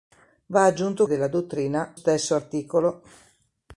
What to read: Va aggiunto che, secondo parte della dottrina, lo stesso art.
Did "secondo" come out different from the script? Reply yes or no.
yes